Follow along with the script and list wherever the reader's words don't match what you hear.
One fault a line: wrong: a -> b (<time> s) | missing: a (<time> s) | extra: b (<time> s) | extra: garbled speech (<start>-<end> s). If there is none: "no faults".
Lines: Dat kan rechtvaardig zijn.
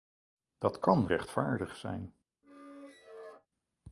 no faults